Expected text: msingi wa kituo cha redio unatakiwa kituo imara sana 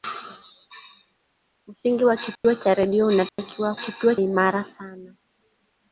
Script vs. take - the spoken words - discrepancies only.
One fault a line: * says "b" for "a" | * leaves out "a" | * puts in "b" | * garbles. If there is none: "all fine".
all fine